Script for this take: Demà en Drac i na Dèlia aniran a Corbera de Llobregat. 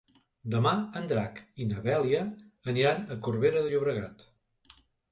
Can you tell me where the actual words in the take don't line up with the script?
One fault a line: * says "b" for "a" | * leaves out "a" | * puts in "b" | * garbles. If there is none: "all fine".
all fine